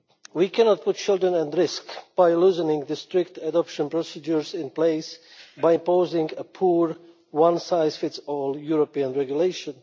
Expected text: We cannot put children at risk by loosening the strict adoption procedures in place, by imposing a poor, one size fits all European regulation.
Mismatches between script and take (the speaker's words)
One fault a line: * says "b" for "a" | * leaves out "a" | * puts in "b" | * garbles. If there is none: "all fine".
all fine